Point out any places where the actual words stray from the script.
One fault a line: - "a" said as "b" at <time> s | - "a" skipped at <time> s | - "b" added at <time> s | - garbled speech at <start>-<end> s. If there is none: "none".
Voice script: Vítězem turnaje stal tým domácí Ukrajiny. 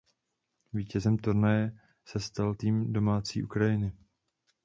- "se" added at 2.1 s